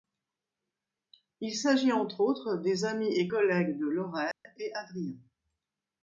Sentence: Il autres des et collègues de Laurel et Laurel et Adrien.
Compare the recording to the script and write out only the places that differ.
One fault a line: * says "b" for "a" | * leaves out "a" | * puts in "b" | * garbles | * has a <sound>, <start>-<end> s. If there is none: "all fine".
* puts in "s'agit entre"
* puts in "amis"
* has a dropout, 4.3-4.5 s
* leaves out "Laurel et"